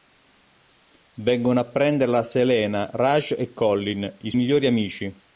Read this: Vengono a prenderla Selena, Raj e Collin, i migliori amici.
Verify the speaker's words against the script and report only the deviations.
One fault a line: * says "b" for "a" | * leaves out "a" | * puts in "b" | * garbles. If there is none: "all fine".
all fine